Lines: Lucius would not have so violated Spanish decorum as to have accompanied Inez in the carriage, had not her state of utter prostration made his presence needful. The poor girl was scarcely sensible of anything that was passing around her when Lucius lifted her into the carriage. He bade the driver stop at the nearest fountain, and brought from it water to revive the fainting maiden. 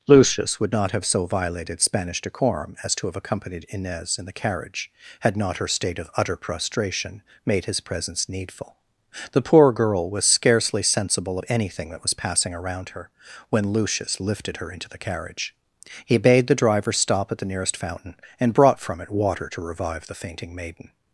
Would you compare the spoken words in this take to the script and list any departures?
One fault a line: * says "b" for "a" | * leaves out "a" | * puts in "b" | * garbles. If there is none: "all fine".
all fine